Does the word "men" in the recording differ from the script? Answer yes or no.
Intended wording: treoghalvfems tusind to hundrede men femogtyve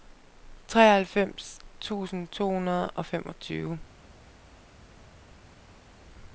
yes